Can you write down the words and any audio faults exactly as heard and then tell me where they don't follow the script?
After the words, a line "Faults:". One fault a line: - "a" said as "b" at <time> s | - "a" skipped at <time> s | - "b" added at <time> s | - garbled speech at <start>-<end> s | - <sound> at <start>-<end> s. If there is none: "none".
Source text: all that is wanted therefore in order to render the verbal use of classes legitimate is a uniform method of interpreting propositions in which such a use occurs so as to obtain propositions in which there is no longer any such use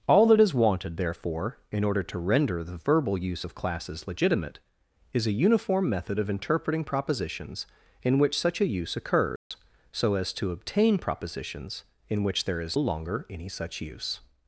all that is wanted therefore in order to render the verbal use of classes legitimate is a uniform method of interpreting propositions in which such a use occurs so as to obtain propositions in which there is longer any such use
Faults:
- dropout at 9.4-9.5 s
- "no" skipped at 12.8 s